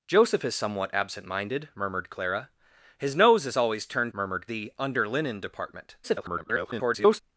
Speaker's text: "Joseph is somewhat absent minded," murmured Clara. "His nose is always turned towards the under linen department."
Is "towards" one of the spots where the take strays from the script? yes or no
yes